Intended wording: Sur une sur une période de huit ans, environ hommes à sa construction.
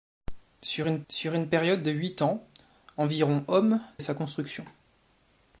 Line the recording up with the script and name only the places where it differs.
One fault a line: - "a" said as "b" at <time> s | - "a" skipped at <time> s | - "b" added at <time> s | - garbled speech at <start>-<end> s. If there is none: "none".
none